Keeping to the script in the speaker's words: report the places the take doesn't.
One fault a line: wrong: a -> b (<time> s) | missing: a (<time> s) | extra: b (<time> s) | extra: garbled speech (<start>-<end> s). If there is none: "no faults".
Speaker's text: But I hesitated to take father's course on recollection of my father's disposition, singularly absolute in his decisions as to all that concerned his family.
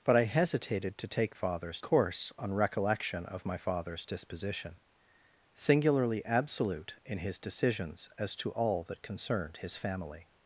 no faults